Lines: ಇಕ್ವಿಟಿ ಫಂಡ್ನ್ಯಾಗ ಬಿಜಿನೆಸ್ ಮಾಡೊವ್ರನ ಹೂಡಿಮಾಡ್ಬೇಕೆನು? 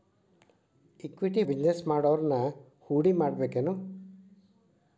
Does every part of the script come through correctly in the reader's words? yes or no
no